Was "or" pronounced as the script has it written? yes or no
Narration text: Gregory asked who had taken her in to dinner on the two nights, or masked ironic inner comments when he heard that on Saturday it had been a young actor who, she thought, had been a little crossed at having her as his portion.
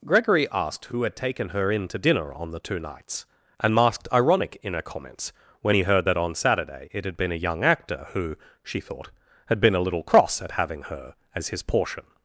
no